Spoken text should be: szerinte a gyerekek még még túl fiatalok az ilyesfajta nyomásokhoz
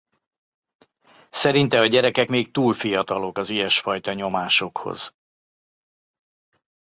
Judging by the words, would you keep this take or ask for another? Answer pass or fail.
fail